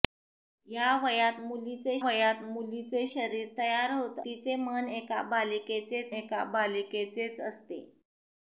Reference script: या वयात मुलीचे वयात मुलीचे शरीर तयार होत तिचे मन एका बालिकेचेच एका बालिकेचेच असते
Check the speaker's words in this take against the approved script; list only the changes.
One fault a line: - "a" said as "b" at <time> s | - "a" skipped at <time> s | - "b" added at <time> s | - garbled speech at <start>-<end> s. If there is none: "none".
none